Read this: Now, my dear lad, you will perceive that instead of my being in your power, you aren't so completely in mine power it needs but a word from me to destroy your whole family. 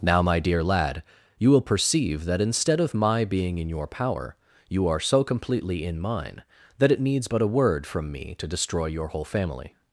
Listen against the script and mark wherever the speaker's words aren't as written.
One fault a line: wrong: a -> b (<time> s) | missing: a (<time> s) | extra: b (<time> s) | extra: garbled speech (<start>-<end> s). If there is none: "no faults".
wrong: aren't -> are (4.9 s)
wrong: power -> that (6.8 s)